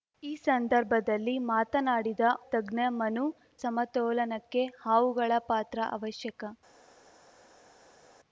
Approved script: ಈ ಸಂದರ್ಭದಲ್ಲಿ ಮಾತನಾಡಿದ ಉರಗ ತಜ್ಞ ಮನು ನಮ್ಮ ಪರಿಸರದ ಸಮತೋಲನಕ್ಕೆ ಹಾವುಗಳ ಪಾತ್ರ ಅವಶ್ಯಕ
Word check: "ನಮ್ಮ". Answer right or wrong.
wrong